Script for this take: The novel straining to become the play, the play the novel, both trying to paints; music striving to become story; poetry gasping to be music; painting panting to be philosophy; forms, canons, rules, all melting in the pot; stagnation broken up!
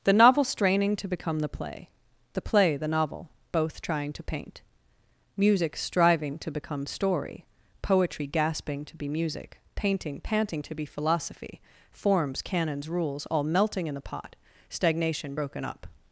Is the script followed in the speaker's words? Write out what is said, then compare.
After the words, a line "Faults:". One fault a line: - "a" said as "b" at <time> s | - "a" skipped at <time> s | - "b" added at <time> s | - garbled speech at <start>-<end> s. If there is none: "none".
The novel straining to become the play, the play the novel, both trying to paint; music striving to become story; poetry gasping to be music; painting panting to be philosophy; forms, canons, rules, all melting in the pot; stagnation broken up!
Faults:
- "paints" said as "paint" at 4.2 s